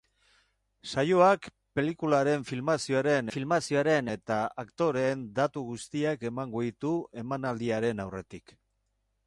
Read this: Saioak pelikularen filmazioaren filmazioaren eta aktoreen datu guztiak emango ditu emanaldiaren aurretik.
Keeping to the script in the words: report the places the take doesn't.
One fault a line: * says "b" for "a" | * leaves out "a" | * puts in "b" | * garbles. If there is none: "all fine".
all fine